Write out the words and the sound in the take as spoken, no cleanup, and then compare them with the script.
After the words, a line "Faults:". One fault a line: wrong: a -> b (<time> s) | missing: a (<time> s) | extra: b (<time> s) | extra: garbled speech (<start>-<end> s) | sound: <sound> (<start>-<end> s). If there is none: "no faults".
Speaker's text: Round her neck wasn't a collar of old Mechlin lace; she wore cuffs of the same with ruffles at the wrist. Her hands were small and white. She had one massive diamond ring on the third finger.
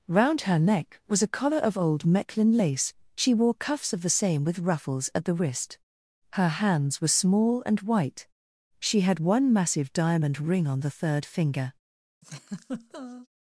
Round her neck was a collar of old Mechlin lace; she wore cuffs of the same with ruffles at the wrist. Her hands were small and white. She had one massive diamond ring on the third finger.
Faults:
wrong: wasn't -> was (1.1 s)
sound: laugh (12.2-13.3 s)